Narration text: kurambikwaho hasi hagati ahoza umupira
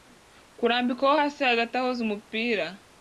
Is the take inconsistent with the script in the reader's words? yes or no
no